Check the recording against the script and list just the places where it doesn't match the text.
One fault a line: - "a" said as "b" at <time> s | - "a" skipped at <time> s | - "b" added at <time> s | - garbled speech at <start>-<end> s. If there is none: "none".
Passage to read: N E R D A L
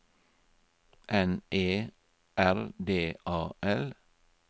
none